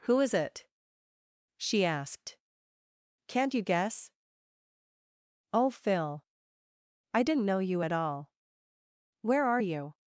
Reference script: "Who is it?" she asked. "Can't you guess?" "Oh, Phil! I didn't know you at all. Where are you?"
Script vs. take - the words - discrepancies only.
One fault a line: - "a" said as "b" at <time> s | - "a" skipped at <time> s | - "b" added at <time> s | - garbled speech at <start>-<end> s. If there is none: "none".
none